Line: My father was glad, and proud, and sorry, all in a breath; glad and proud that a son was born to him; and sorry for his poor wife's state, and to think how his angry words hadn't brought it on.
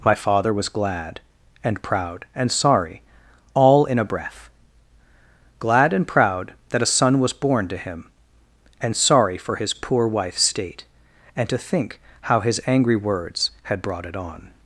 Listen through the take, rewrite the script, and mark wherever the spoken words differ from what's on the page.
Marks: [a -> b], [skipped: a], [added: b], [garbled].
My father was glad, and proud, and sorry, all in a breath; glad and proud that a son was born to him; and sorry for his poor wife's state, and to think how his angry words [hadn't -> had] brought it on.